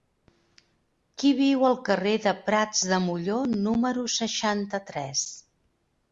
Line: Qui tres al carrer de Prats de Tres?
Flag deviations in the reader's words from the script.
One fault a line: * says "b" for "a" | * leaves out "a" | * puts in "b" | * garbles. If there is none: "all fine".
* says "viu" for "tres"
* puts in "Molló número seixanta"